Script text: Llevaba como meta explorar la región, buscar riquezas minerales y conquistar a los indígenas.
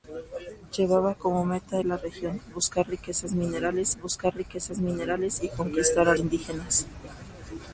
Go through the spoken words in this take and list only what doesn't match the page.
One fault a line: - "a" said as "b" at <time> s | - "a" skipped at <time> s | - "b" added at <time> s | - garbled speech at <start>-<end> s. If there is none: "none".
- "explorar" skipped at 1.8 s
- "buscar riquezas minerales" added at 4.0 s
- "los" skipped at 6.1 s